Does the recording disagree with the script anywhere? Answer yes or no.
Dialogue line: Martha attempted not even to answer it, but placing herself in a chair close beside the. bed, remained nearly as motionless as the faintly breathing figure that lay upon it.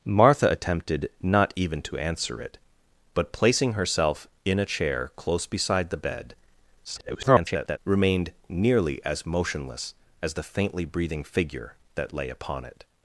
yes